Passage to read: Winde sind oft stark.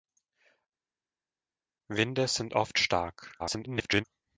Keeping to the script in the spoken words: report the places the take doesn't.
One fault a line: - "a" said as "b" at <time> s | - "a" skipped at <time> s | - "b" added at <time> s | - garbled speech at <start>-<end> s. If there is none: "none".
- garbled speech at 3.4-4.0 s